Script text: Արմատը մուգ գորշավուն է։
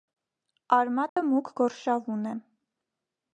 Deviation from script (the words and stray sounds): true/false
true